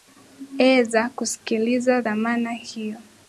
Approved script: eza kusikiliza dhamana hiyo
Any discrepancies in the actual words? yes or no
no